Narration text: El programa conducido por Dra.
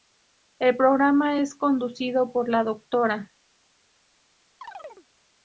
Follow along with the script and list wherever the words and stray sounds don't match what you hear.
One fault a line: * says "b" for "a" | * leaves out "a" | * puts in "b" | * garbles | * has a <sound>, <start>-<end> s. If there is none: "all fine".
* puts in "es"
* puts in "la"
* has a chirp, 4.6-5.1 s